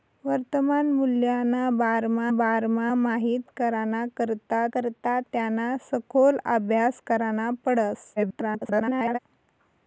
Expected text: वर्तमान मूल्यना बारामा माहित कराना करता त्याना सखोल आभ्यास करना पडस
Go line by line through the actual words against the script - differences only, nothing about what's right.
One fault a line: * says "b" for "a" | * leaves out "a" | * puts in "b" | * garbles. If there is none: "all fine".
* puts in "बारामा"
* puts in "करता"
* garbles